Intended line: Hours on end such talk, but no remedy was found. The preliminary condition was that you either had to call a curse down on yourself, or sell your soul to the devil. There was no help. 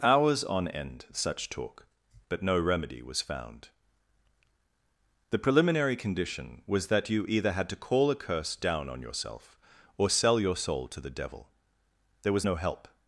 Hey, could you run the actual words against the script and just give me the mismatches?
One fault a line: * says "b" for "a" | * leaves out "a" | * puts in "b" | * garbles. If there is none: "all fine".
all fine